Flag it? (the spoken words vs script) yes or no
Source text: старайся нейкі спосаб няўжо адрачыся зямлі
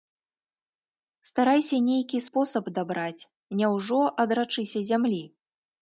yes